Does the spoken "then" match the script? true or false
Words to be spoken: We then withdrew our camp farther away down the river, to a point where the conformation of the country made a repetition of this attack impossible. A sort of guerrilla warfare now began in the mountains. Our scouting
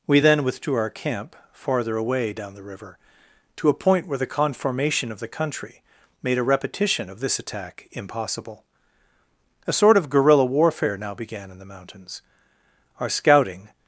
true